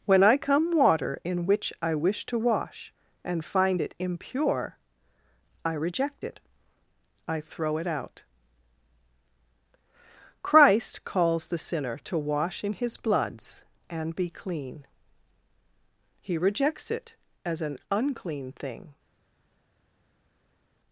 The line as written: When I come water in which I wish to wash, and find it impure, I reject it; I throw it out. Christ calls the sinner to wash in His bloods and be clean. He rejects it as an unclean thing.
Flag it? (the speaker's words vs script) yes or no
no